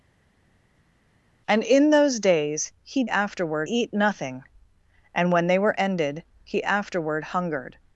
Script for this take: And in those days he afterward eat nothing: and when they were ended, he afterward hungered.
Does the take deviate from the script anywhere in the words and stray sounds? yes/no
no